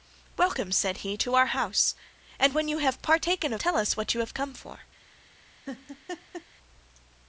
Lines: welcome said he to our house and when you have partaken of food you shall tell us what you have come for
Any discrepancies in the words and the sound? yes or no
yes